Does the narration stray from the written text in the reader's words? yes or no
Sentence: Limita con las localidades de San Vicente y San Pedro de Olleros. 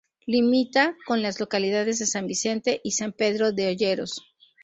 no